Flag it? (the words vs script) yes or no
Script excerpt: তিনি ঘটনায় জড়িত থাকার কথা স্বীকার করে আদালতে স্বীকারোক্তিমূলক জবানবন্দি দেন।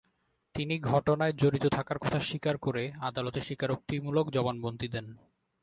no